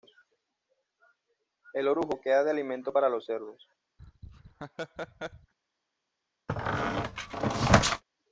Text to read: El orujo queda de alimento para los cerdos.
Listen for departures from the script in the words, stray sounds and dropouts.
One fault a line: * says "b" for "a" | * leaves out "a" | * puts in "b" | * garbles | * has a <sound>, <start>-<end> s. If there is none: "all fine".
* has a laugh, 4.0-5.5 s
* has a squeak, 6.5-8.0 s